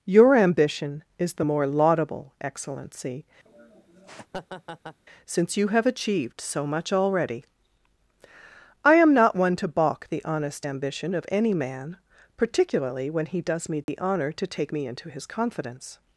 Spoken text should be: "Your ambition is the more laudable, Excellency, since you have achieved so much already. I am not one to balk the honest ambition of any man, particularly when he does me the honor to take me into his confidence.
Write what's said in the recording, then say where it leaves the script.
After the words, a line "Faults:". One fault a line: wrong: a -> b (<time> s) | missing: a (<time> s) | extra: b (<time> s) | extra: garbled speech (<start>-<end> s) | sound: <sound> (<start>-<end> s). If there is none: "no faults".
"Your ambition is the more laudable, Excellency, since you have achieved so much already. I am not one to balk the honest ambition of any man, particularly when he does me the honor to take me into his confidence.
Faults:
sound: laugh (3.5-5.0 s)
sound: dropout (13.8-13.9 s)